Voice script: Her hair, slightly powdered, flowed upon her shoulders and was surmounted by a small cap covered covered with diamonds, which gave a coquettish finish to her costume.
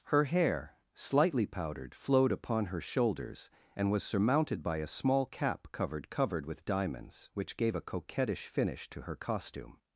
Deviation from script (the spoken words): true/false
false